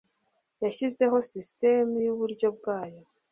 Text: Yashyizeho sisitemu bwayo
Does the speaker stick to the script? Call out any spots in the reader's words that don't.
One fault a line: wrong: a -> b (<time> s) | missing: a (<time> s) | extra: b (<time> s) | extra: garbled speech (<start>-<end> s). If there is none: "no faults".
extra: yuburyo (2.1 s)